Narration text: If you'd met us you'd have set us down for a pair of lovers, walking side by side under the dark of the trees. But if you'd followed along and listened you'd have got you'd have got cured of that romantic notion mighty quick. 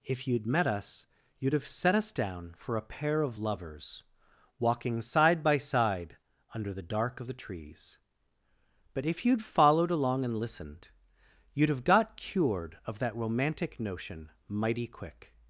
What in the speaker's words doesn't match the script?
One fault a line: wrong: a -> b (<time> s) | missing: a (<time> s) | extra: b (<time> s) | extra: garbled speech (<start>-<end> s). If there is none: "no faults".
missing: you'd have got (12.2 s)